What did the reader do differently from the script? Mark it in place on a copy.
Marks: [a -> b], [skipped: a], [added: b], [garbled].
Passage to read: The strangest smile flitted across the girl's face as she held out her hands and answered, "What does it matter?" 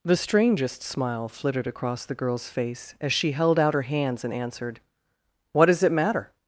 The strangest smile flitted across the girl's face as she held out her hands and answered, "What does it matter?"